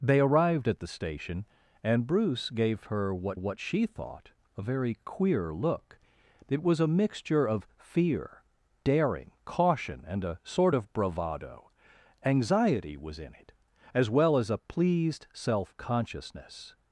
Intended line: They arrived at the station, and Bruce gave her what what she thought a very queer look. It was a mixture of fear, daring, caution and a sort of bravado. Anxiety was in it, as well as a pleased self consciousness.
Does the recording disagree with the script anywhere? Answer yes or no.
no